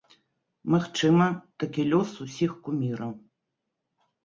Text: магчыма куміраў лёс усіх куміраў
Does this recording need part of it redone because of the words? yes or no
yes